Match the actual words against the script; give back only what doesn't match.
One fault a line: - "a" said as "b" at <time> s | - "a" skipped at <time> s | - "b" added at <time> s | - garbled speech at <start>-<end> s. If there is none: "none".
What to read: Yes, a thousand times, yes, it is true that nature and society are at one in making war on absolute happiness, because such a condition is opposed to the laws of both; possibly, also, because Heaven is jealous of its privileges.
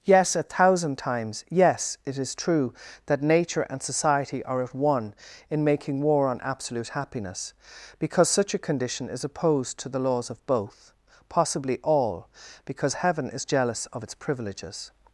- "also" said as "all" at 11.8 s